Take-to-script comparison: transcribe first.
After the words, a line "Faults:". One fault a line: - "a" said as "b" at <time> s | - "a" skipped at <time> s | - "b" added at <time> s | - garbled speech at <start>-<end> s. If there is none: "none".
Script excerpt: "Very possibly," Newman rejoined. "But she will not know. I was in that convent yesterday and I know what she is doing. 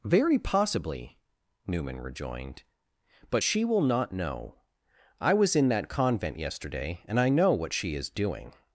"Very possibly," Newman rejoined. "But she will not know. I was in that convent yesterday and I know what she is doing.
Faults:
none